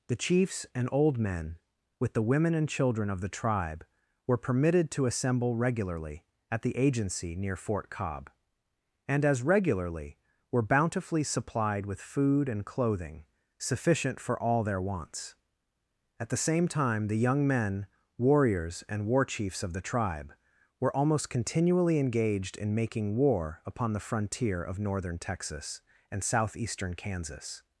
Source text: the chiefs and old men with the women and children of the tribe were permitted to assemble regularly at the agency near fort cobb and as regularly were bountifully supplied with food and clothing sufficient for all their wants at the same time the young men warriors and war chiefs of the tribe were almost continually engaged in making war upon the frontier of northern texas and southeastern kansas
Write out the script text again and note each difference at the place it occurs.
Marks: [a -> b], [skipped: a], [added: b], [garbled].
the chiefs and old men with the women and children of the tribe were permitted to assemble regularly at the agency near fort cobb and as regularly were bountifully supplied with food and clothing sufficient for all their wants at the same time the young men warriors and war chiefs of the tribe were almost continually engaged in making war upon the frontier of northern texas and southeastern kansas